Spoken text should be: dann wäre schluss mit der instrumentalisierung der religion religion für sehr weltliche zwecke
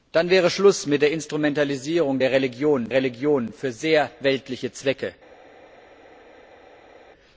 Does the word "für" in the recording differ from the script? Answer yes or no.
no